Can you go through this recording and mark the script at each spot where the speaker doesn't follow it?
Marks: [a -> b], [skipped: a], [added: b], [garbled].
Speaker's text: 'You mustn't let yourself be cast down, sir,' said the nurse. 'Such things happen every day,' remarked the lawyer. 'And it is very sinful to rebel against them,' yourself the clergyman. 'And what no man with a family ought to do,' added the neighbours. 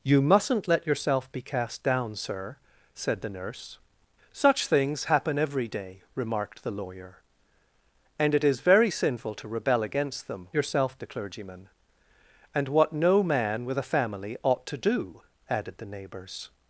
'You mustn't let yourself be cast down, sir,' said the nurse. 'Such things happen every day,' remarked the lawyer. 'And it is very sinful to rebel against them,' yourself the clergyman. 'And what no man with a family ought to do,' added the neighbours.